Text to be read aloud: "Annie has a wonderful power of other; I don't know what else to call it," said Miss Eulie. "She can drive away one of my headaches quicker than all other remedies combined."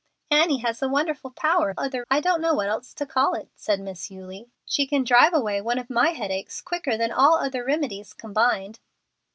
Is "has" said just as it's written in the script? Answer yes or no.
yes